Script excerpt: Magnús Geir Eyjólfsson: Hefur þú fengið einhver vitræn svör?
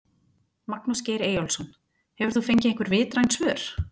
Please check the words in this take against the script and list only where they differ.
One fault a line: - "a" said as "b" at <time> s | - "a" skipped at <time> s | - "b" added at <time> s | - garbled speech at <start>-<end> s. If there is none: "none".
none